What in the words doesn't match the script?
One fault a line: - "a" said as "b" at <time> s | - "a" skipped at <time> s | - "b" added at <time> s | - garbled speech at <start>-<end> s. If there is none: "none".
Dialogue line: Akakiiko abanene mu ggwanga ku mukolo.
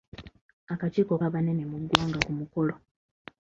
none